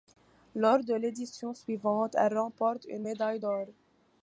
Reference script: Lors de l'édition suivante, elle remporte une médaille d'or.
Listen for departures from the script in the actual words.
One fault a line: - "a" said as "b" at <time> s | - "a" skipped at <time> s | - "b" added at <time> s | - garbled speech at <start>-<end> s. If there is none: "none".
none